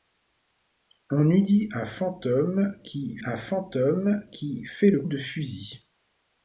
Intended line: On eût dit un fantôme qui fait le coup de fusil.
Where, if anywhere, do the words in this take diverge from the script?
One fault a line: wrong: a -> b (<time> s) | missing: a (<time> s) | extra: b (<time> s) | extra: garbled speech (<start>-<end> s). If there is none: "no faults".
extra: un fantôme qui (3.2 s)
missing: coup (5.0 s)